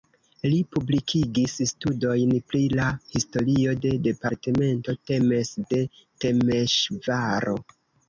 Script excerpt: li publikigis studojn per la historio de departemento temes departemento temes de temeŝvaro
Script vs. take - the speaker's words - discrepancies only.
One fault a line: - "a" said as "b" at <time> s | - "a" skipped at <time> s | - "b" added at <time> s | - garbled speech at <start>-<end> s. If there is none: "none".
- "per" said as "pri" at 2.5 s
- "departemento temes" skipped at 5.5 s